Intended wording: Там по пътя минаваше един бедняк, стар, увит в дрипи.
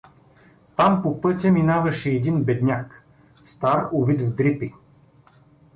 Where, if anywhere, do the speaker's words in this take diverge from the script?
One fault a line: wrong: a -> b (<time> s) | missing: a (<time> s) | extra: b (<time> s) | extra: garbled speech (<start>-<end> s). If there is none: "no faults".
no faults